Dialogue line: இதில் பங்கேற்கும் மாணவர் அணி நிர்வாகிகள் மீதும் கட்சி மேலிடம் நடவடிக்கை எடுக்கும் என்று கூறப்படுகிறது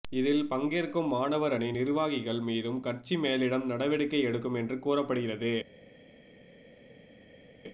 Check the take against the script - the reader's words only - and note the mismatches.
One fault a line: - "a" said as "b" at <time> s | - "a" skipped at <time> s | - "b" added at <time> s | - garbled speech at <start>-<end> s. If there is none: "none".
none